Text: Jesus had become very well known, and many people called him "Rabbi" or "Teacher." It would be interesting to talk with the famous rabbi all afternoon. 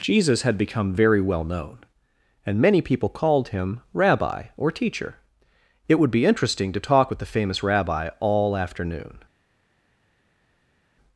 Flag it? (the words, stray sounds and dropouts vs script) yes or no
no